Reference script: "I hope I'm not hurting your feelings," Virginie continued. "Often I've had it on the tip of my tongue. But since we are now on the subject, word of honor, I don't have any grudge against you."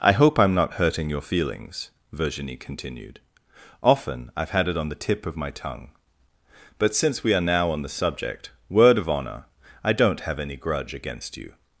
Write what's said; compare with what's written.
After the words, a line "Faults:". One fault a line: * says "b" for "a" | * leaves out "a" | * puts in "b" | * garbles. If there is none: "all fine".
"I hope I'm not hurting your feelings," Virginie continued. "Often I've had it on the tip of my tongue. But since we are now on the subject, word of honor, I don't have any grudge against you."
Faults:
all fine